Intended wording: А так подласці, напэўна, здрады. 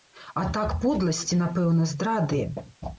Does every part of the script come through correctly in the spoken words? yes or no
yes